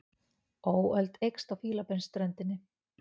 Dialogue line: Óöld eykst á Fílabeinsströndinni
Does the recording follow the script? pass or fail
pass